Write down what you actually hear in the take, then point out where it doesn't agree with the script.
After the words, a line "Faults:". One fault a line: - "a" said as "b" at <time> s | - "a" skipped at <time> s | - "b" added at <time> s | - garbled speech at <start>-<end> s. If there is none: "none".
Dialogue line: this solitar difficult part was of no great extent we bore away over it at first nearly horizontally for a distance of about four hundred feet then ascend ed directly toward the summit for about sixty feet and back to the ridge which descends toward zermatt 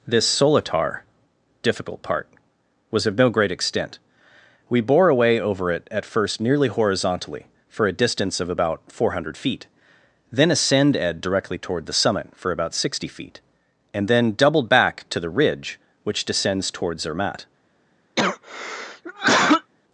this solitar difficult part was of no great extent we bore away over it at first nearly horizontally for a distance of about four hundred feet then ascend ed directly toward the summit for about sixty feet and then doubled back to the ridge which descends toward zermatt
Faults:
- "then doubled" added at 14.1 s